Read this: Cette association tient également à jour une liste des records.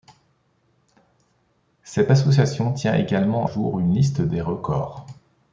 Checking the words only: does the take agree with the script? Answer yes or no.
no